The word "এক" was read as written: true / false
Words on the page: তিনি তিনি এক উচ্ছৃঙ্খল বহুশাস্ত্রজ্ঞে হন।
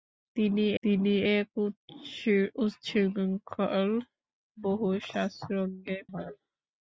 true